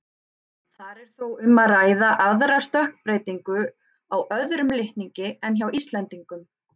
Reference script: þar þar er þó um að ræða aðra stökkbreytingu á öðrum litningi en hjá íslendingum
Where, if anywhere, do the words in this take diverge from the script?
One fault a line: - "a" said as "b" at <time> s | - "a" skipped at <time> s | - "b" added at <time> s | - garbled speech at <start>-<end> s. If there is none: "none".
- "þar" skipped at 1.0 s